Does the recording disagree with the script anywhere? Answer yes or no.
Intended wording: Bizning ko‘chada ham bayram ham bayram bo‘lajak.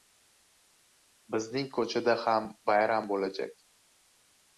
yes